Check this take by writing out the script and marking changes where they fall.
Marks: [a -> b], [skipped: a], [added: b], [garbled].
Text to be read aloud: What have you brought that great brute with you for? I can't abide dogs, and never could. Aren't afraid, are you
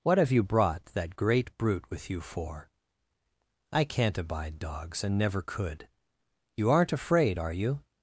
What have you brought that great brute with you for? I can't abide dogs, and never could. [added: You] Aren't afraid, are you